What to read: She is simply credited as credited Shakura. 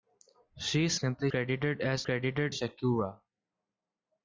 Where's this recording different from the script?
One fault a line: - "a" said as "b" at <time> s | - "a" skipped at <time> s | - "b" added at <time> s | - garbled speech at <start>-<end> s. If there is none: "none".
none